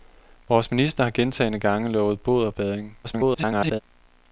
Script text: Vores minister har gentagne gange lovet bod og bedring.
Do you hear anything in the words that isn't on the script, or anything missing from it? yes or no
yes